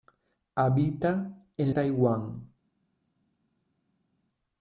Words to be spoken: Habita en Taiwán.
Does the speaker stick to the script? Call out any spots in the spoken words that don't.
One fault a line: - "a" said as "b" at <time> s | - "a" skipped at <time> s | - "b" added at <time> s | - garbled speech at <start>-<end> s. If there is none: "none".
none